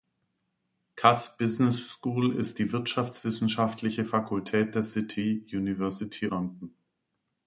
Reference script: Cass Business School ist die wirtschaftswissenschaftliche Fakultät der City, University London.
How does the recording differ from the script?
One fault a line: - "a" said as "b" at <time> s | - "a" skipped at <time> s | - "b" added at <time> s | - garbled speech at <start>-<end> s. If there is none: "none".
none